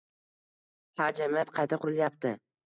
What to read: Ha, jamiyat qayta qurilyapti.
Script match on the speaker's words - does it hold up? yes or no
yes